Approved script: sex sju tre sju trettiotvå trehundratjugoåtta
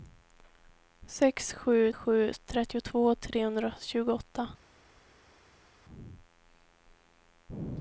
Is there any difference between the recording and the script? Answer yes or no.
yes